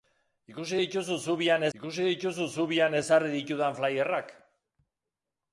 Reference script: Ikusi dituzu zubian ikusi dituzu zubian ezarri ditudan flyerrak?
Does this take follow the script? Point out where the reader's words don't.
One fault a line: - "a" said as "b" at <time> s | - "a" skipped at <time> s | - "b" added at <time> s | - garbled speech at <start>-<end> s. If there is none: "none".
none